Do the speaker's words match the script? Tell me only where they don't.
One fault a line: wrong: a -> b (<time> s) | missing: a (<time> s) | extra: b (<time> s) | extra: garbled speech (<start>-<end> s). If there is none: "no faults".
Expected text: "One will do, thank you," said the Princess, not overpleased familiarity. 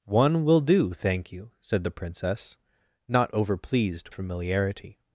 no faults